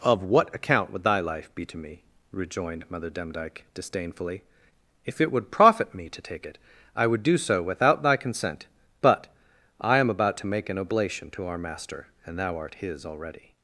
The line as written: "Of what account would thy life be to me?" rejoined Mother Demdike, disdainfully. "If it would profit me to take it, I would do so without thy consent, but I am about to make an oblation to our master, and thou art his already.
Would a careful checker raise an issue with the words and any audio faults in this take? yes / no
no